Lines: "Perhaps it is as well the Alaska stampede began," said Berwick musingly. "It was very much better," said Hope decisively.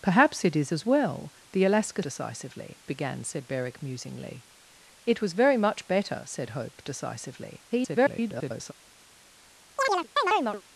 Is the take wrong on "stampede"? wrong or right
wrong